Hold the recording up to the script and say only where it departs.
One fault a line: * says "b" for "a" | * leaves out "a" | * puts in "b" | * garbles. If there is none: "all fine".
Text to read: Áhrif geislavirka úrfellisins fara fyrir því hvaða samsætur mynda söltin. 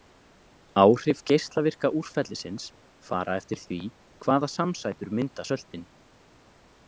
* says "eftir" for "fyrir"